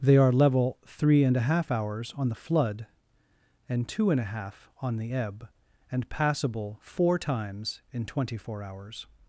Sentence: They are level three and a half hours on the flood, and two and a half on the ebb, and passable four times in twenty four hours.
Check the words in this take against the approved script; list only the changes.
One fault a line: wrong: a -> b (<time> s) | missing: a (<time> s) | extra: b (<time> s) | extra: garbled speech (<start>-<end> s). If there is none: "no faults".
no faults